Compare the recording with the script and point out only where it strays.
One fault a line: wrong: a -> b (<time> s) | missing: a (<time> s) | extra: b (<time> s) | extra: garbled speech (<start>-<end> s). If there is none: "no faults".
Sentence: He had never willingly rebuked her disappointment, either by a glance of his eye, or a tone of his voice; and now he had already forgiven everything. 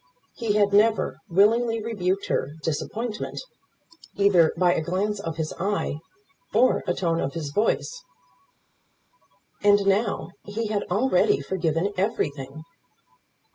no faults